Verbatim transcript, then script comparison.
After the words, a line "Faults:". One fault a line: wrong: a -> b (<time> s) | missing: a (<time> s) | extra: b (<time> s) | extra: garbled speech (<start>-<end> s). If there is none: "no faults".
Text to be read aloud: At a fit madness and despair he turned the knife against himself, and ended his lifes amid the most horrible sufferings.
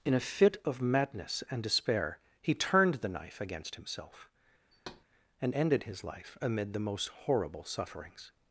In a fit of madness and despair he turned the knife against himself, and ended his life amid the most horrible sufferings.
Faults:
wrong: At -> In (0.0 s)
extra: of (0.7 s)
wrong: lifes -> life (6.0 s)